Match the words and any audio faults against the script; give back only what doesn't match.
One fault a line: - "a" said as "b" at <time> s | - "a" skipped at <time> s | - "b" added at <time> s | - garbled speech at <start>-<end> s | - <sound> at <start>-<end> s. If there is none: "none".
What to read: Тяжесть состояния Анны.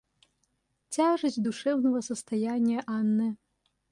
- "душевного" added at 1.4 s